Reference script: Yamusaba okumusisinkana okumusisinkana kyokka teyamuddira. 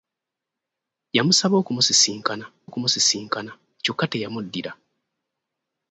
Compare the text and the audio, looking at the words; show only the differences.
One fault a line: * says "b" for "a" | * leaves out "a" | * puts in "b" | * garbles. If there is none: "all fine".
all fine